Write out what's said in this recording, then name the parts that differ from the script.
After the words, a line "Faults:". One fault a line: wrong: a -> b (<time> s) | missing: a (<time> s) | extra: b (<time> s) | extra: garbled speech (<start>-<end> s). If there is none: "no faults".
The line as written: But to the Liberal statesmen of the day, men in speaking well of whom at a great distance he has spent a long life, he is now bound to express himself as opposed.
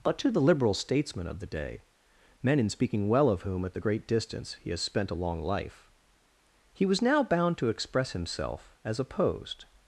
But to the Liberal statesmen of the day, men in speaking well of whom at the great distance he has spent a long life, he was now bound to express himself as opposed.
Faults:
wrong: a -> the (3.7 s)
wrong: is -> was (6.8 s)